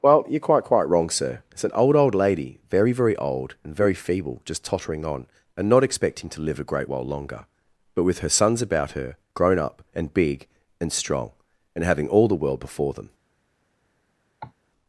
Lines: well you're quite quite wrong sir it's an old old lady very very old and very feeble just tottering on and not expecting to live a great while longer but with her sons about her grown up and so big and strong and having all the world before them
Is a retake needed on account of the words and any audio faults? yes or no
yes